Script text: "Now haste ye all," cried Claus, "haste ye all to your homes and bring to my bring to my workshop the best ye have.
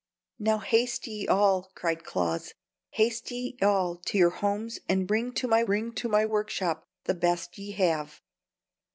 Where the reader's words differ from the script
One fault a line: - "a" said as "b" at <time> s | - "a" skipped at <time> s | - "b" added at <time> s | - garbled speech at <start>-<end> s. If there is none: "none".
none